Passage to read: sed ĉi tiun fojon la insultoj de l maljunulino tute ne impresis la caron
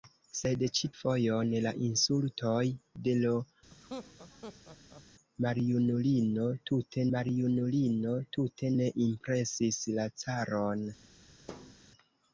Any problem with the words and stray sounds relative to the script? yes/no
yes